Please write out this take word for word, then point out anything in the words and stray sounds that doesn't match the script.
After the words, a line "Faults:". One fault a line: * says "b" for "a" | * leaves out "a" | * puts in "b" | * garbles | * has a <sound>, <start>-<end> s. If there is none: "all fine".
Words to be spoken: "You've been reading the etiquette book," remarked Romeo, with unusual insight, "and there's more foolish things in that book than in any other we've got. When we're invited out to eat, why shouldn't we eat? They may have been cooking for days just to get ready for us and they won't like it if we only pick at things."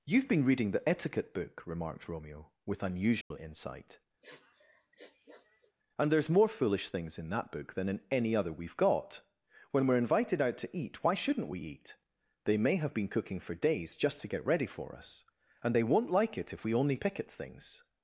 "You've been reading the etiquette book," remarked Romeo, with unusual insight, "and there's more foolish things in that book than in any other we've got. When we're invited out to eat, why shouldn't we eat? They may have been cooking for days just to get ready for us and they won't like it if we only pick at things."
Faults:
* has a dropout, 3.2-3.3 s
* has a sniff, 4.2-5.7 s